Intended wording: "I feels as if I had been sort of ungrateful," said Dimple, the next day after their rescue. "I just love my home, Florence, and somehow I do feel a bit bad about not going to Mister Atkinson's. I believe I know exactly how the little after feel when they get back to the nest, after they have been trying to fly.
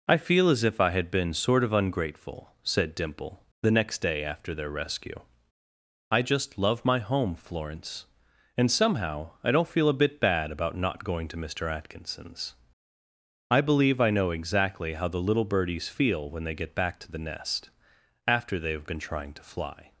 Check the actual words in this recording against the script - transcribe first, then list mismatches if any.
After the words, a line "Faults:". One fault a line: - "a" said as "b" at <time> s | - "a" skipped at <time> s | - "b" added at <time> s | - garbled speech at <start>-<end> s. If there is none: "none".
"I feel as if I had been sort of ungrateful," said Dimple, the next day after their rescue. "I just love my home, Florence, and somehow I don't feel a bit bad about not going to Mister Atkinson's. I believe I know exactly how the little birdies feel when they get back to the nest, after they have been trying to fly.
Faults:
- "feels" said as "feel" at 0.2 s
- "do" said as "don't" at 9.5 s
- "after" said as "birdies" at 15.4 s